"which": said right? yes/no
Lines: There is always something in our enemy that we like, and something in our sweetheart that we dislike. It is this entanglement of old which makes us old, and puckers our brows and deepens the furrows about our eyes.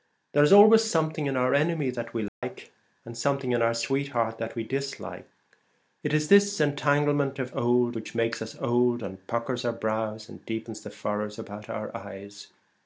yes